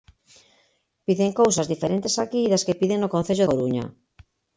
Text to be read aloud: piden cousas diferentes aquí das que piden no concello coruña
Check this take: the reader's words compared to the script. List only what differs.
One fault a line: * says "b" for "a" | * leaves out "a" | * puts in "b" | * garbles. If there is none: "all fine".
all fine